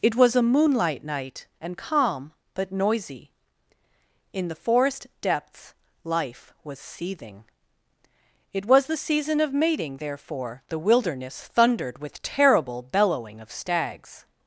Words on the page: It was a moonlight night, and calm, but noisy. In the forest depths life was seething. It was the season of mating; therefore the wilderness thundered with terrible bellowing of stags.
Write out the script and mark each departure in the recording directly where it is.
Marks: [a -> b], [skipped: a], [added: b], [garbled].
It was a moonlight night, and calm, but noisy. In the forest depths life was seething. It was the season of mating; therefore the wilderness thundered with terrible bellowing of stags.